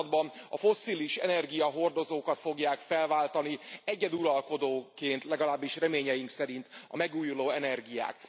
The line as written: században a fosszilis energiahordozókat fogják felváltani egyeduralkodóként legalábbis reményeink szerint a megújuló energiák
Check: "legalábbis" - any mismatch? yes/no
no